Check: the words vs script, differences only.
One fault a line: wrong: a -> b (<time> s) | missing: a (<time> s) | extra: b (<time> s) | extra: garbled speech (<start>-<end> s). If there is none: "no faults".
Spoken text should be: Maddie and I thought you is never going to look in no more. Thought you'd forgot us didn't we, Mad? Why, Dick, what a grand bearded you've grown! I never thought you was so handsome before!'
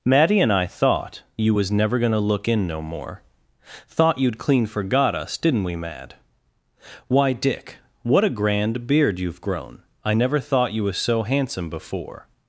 wrong: is -> was (1.5 s)
extra: clean (4.4 s)
wrong: bearded -> beard (8.9 s)